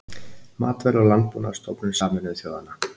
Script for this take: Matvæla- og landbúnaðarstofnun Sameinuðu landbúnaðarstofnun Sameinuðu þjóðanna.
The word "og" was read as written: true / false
true